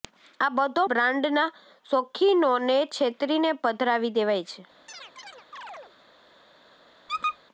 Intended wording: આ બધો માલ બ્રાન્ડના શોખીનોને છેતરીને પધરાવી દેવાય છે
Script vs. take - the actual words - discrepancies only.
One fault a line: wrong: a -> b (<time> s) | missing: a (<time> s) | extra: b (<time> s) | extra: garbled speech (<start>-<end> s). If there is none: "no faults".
missing: માલ (0.8 s)